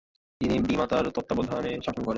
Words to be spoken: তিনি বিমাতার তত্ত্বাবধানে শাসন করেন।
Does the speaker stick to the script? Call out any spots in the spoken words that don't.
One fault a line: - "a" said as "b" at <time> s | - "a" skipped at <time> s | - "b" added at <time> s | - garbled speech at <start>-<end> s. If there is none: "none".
none